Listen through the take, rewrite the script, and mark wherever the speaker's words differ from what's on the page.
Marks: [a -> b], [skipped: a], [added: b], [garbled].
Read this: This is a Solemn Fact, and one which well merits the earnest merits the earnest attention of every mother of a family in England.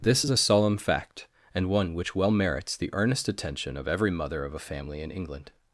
This is a Solemn Fact, and one which well merits the earnest [skipped: merits the earnest] attention of every mother of a family in England.